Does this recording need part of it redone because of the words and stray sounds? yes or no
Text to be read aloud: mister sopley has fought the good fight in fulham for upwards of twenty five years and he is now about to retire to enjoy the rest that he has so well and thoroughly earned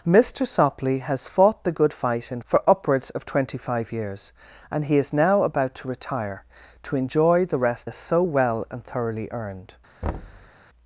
yes